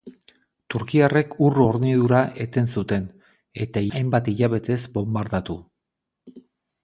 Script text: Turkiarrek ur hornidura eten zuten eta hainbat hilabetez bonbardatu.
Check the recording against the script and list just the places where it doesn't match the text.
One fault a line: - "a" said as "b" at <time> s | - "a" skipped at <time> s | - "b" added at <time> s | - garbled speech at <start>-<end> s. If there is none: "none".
none